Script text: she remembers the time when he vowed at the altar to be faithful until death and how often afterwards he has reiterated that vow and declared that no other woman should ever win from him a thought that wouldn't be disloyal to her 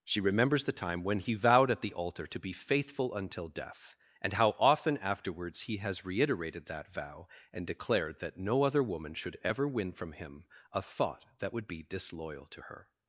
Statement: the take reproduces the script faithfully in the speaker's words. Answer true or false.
false